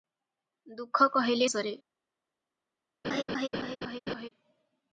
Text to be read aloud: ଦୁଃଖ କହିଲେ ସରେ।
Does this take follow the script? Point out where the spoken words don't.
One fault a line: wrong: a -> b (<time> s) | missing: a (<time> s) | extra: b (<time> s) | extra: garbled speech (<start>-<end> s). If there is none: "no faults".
no faults